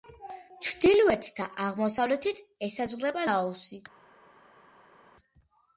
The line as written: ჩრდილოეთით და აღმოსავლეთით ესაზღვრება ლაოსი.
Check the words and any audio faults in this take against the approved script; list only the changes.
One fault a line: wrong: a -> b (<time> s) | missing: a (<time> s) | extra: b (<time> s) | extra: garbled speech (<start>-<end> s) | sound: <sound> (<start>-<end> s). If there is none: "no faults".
no faults